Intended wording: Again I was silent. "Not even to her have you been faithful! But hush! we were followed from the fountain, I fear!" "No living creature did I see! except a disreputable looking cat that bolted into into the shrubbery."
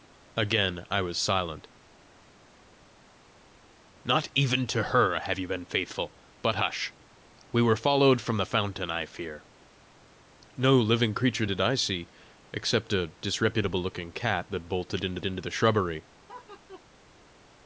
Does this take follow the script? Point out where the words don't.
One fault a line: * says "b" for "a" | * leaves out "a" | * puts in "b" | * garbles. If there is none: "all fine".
all fine